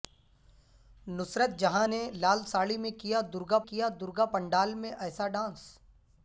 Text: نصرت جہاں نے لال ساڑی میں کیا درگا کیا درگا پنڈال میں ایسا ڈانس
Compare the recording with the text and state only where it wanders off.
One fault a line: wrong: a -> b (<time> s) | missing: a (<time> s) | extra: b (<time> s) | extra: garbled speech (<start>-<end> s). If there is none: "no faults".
no faults